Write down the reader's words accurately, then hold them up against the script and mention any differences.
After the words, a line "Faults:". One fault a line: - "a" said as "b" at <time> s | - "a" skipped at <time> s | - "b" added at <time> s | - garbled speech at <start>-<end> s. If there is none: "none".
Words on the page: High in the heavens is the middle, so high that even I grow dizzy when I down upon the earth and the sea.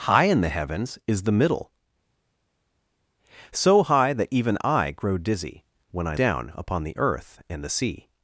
High in the heavens is the middle, so high that even I grow dizzy when I down upon the earth and the sea.
Faults:
none